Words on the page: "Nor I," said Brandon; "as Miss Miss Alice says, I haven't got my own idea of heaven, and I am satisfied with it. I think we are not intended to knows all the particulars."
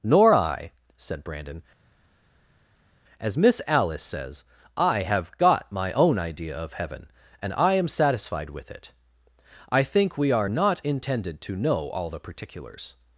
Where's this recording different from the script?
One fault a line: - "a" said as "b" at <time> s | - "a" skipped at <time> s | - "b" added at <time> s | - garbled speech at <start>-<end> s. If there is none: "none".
- "Miss" skipped at 3.6 s
- "haven't" said as "have" at 5.0 s
- "knows" said as "know" at 11.6 s